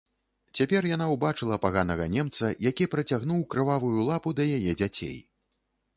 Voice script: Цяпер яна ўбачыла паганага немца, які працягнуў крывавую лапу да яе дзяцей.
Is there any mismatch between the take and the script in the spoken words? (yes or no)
no